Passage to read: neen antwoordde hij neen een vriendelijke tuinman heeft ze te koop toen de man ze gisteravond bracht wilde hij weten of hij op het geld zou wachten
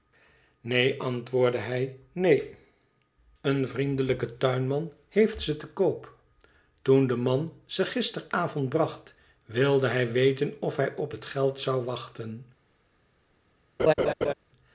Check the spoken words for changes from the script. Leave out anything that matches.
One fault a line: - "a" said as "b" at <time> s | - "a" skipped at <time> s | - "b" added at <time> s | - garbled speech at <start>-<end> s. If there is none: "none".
none